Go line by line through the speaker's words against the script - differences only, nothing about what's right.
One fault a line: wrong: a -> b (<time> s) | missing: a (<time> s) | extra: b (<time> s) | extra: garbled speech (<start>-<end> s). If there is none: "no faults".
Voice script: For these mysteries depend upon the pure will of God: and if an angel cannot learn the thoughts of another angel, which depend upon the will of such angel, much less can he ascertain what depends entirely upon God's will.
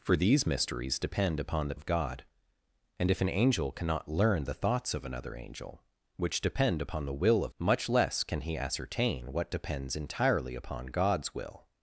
missing: pure will (1.8 s)
missing: such angel (7.5 s)